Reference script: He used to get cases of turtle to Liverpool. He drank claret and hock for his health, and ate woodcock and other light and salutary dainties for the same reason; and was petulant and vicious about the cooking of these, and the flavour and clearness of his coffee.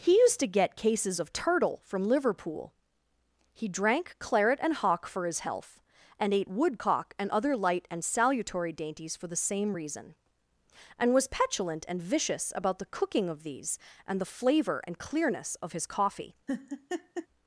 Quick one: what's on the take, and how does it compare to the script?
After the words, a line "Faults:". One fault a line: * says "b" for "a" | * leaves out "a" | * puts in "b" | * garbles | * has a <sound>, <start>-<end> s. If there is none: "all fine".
He used to get cases of turtle from Liverpool. He drank claret and hock for his health, and ate woodcock and other light and salutary dainties for the same reason; and was petulant and vicious about the cooking of these, and the flavour and clearness of his coffee.
Faults:
* says "from" for "to"
* has a laugh, 16.5-17.3 s